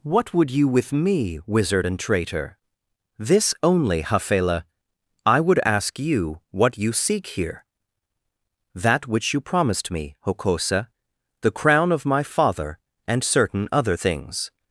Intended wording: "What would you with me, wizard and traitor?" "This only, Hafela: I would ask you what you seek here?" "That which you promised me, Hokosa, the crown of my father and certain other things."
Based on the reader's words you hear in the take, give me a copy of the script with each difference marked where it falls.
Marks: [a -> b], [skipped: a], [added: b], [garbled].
"What would you with me, wizard and traitor?" "This only, Hafela: I would ask you what you seek here?" "That which you promised me, Hokosa, the crown of my father and certain other things."